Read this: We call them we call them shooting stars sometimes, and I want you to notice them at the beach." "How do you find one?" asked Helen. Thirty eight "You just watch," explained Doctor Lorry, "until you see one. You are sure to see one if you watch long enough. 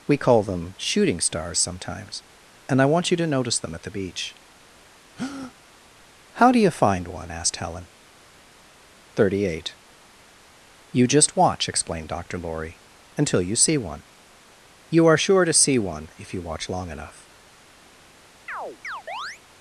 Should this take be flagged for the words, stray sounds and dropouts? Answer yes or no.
yes